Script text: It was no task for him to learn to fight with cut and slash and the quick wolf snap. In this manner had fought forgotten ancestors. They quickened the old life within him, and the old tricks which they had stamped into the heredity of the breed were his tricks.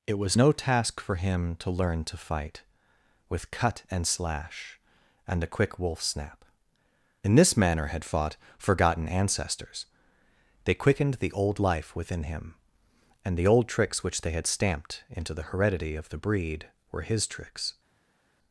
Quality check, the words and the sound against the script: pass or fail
fail